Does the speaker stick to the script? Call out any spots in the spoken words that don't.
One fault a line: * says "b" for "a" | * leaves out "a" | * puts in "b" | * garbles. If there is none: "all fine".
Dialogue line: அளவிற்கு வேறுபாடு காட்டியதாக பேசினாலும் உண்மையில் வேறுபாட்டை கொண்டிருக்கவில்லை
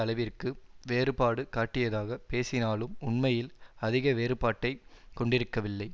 * puts in "அதிக"